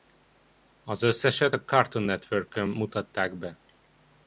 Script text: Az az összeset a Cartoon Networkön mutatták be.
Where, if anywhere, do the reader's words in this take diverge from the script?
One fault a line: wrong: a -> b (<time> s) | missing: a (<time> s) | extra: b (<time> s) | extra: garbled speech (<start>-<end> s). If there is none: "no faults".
missing: az (1.0 s)